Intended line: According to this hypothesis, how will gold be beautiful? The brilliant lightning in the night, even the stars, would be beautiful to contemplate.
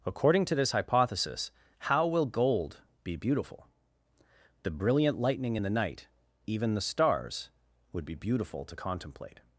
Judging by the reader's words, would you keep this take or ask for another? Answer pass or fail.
pass